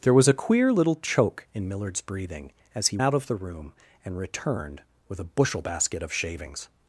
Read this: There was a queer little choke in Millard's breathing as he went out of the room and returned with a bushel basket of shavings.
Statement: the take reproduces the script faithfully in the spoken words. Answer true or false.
false